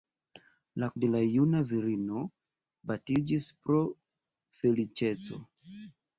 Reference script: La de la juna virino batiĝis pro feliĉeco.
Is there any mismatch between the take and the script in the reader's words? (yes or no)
no